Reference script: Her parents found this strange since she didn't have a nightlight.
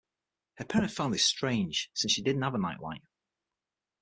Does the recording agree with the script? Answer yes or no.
yes